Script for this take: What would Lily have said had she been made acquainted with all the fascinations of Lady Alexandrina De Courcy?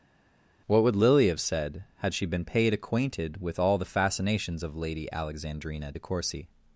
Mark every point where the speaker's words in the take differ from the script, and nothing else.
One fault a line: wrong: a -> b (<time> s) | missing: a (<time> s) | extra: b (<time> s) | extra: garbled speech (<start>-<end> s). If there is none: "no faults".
wrong: made -> paid (2.4 s)